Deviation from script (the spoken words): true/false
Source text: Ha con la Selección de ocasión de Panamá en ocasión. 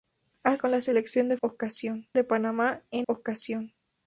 false